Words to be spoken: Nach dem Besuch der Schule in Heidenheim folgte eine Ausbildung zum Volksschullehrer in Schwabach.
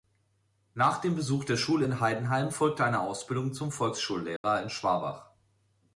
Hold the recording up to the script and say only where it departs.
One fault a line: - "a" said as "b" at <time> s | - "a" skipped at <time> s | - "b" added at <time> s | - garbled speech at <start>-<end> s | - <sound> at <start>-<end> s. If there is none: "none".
- dropout at 4.4-4.4 s